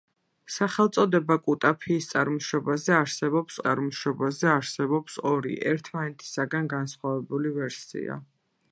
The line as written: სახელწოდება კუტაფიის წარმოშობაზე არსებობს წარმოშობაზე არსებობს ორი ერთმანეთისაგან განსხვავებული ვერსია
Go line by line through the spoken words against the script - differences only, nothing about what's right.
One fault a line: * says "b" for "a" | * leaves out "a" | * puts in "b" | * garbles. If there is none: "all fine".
all fine